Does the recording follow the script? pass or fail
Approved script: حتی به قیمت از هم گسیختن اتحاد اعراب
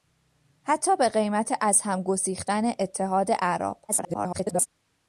fail